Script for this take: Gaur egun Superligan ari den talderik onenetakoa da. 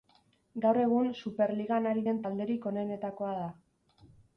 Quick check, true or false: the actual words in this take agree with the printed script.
true